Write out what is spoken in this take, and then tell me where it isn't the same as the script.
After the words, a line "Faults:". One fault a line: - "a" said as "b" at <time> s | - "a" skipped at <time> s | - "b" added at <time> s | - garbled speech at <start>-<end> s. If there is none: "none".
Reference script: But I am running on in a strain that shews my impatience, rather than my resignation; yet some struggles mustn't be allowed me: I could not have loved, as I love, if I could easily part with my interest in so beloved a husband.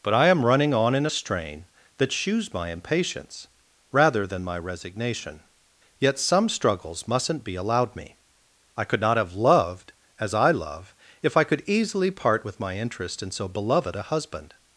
But I am running on in a strain that shews my impatience, rather than my resignation; yet some struggles mustn't be allowed me: I could not have loved, as I love, if I could easily part with my interest in so beloved a husband.
Faults:
none